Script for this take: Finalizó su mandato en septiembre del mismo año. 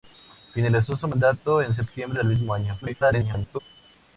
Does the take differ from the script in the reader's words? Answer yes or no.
yes